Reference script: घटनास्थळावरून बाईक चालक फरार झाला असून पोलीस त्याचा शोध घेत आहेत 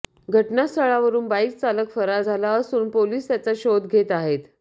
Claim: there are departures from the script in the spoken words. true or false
false